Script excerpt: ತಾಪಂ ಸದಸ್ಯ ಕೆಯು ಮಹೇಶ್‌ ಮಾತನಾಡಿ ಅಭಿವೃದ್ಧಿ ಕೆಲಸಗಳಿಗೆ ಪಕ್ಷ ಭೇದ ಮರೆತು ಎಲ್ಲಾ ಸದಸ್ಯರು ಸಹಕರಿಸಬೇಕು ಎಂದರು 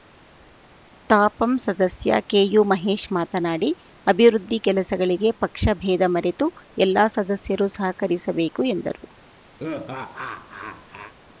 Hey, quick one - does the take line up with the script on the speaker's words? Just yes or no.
yes